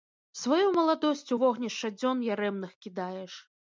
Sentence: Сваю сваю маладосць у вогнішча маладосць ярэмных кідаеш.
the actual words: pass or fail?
fail